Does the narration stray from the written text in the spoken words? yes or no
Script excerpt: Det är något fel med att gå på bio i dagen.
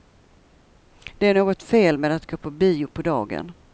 yes